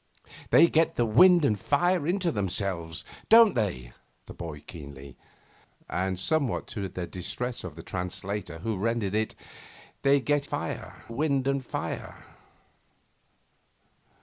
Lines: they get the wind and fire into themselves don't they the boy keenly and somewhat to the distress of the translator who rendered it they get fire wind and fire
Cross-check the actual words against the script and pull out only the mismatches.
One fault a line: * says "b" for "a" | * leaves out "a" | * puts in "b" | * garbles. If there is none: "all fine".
all fine